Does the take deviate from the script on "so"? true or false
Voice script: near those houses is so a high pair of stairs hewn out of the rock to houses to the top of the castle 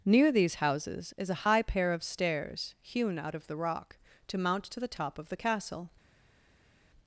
true